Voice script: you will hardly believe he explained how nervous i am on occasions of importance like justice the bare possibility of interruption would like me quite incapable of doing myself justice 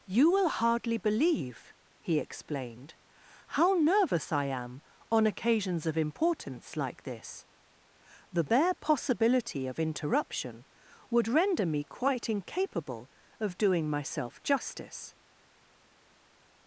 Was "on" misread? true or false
false